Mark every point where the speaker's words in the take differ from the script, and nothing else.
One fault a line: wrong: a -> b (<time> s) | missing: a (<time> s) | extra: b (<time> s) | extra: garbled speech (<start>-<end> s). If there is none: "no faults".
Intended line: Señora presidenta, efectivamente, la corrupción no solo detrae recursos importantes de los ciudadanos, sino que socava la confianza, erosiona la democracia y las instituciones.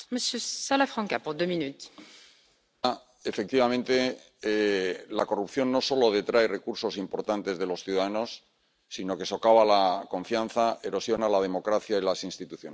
no faults